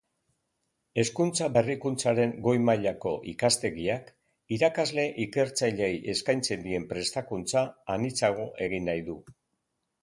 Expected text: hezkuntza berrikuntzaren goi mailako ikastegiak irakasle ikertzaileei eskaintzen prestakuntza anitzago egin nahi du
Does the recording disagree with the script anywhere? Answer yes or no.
yes